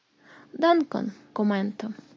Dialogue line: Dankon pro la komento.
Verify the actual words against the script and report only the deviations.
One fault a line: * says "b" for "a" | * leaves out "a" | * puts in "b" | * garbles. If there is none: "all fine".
* leaves out "pro la"